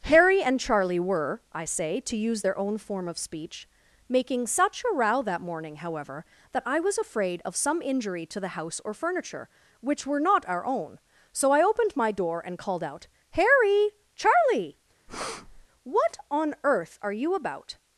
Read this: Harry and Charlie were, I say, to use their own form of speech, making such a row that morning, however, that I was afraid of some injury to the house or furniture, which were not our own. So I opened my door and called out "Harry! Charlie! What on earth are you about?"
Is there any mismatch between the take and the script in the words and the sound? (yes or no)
yes